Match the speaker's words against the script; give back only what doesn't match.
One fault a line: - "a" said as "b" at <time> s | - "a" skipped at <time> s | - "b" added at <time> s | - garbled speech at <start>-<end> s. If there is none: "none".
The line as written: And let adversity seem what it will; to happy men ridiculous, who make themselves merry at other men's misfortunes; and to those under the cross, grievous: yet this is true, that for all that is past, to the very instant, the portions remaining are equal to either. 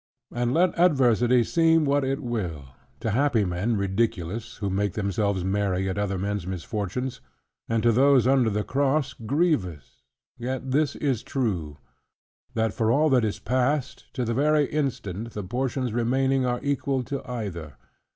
none